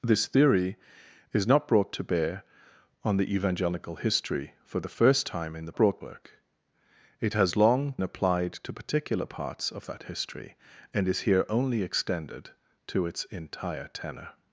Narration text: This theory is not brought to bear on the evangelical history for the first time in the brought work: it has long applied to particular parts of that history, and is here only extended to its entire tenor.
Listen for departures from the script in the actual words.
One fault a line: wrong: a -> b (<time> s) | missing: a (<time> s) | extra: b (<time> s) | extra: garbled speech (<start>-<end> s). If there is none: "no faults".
no faults